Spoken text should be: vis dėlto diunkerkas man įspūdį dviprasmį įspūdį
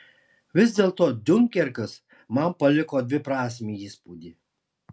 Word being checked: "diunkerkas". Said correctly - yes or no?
yes